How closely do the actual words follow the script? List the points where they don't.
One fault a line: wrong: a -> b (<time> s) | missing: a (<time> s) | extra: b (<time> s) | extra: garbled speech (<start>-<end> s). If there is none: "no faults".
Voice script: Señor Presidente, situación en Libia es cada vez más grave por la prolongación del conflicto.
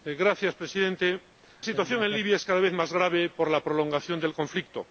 no faults